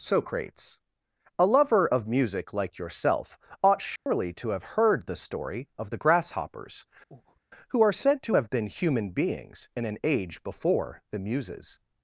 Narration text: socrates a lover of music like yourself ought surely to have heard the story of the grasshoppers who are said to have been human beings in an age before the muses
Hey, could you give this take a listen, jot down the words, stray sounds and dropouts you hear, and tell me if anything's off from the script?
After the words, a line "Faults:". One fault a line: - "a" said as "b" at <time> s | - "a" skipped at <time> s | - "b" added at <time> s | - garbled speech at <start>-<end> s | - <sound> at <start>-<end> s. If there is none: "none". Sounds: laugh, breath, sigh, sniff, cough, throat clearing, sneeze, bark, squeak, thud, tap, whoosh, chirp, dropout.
socrates a lover of music like yourself ought surely to have heard the story of the grasshoppers who are said to have been human beings in an age before the muses
Faults:
- dropout at 4.0-4.1 s
- breath at 7.1-7.4 s